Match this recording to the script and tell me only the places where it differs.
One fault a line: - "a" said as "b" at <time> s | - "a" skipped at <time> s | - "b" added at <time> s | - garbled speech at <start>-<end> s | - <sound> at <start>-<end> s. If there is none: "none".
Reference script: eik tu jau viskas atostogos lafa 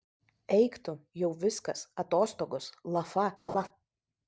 - laugh at 3.5-3.7 s